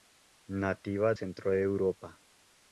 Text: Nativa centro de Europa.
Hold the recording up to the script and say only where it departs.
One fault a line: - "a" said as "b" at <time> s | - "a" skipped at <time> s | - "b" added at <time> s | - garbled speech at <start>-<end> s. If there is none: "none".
none